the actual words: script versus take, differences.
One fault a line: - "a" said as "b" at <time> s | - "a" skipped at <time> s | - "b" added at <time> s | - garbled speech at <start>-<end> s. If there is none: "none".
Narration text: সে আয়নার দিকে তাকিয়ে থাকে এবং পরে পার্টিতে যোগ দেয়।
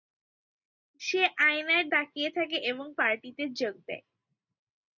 - "দিকে" skipped at 1.9 s
- "পরে" skipped at 2.9 s